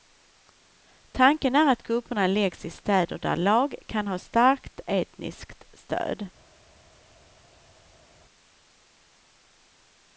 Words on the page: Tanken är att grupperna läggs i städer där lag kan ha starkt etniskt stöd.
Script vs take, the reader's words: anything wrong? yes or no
no